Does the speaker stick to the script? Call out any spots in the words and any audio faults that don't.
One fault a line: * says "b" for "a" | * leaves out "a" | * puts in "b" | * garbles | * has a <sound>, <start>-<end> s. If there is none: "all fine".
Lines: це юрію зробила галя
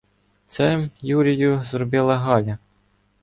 all fine